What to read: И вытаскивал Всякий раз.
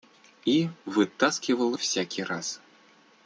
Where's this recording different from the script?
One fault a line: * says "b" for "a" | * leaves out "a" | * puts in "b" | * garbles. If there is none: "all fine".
all fine